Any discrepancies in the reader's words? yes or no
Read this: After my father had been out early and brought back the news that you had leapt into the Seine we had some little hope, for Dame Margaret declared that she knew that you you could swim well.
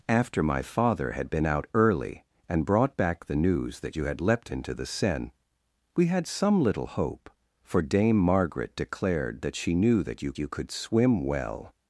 no